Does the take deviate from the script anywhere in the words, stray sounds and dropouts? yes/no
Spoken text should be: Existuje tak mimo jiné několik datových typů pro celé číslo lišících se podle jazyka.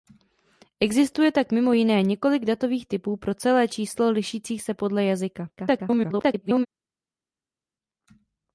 yes